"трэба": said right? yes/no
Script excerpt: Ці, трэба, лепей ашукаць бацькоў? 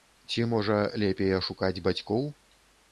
no